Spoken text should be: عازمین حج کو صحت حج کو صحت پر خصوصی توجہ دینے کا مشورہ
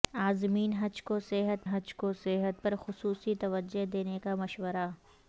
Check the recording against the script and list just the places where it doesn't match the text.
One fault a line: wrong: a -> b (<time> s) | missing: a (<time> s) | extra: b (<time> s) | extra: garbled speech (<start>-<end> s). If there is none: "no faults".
no faults